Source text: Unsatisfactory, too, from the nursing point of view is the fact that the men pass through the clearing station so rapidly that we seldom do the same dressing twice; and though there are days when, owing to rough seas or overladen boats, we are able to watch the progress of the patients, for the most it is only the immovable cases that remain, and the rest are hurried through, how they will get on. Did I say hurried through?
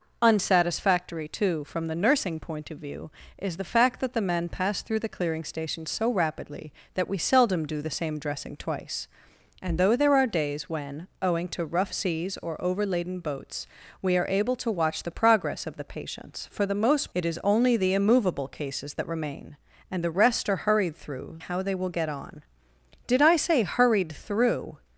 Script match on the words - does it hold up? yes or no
yes